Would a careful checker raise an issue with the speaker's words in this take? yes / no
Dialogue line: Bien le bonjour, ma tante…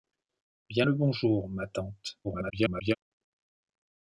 yes